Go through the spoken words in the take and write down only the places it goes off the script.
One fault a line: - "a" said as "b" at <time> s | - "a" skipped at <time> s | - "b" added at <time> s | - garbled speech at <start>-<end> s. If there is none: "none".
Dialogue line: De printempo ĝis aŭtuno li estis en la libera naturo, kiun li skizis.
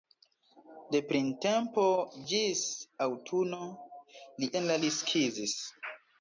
- "estis" skipped at 4.5 s
- "libera naturo kiun" skipped at 4.8 s